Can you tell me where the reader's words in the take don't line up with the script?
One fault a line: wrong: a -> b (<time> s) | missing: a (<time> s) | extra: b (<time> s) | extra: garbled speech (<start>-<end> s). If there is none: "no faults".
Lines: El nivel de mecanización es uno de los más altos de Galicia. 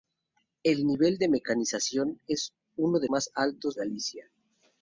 missing: los (3.1 s)
missing: de (3.8 s)